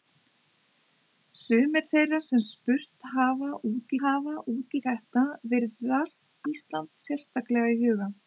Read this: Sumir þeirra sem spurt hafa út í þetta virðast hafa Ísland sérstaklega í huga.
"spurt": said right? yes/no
yes